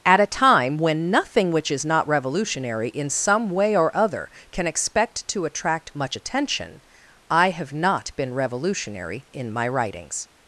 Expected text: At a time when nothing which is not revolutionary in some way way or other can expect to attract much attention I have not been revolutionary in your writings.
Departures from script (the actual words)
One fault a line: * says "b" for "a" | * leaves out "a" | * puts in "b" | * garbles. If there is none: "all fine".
* leaves out "way"
* says "my" for "your"